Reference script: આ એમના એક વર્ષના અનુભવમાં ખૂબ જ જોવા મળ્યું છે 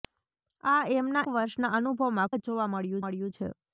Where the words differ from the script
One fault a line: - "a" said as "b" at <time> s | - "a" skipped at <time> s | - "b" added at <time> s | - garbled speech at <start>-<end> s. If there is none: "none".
- "એક" skipped at 1.2 s
- "ખૂબ" skipped at 2.3 s
- "મળ્યું" added at 3.0 s